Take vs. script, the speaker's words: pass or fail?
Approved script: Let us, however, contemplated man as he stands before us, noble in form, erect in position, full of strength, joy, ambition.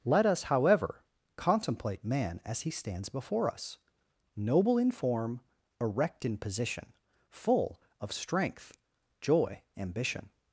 fail